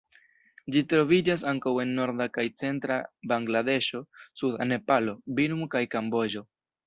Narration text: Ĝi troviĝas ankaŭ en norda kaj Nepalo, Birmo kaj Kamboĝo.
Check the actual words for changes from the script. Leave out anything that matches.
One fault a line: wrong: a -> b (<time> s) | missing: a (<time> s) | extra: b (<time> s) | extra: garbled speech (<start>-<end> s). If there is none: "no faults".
extra: centra Bangladeŝo suda (2.6 s)